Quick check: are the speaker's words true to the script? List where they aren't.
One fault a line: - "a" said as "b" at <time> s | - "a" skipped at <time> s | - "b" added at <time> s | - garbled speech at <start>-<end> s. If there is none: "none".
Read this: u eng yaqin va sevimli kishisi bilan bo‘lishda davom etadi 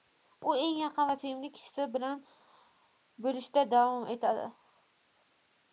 none